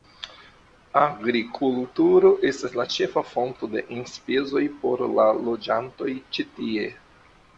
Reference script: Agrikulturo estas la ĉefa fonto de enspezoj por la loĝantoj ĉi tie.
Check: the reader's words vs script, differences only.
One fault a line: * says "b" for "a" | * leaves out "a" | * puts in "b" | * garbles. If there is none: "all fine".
all fine